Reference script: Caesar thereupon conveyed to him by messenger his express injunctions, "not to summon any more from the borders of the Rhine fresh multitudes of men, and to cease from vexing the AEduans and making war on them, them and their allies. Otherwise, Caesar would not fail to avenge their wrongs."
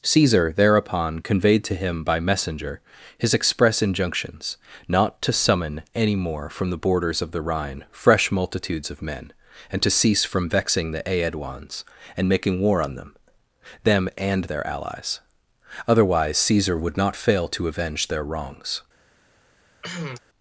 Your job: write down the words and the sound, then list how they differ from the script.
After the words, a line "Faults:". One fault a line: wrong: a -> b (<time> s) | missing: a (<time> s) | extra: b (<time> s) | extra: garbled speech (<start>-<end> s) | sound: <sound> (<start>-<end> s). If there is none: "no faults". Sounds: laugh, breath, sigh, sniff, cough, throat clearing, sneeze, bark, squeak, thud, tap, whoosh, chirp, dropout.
Caesar thereupon conveyed to him by messenger his express injunctions, "not to summon any more from the borders of the Rhine fresh multitudes of men, and to cease from vexing the AEduans and making war on them, them and their allies. Otherwise, Caesar would not fail to avenge their wrongs."
Faults:
sound: cough (19.8-20.2 s)